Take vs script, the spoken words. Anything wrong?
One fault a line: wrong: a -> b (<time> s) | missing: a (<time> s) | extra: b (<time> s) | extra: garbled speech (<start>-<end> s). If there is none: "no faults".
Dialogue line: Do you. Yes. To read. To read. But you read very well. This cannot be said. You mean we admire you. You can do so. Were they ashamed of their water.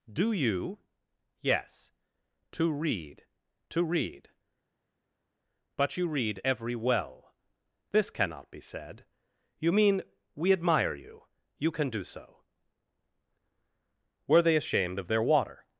wrong: very -> every (6.4 s)